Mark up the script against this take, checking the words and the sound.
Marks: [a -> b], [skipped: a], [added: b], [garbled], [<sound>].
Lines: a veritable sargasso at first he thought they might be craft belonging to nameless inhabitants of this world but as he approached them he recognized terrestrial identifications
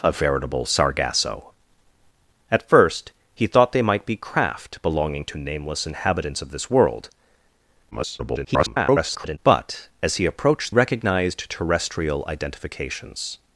a veritable sargasso at first he thought they might be craft belonging to nameless inhabitants of this world [garbled] but as he approached [skipped: them he] recognized terrestrial identifications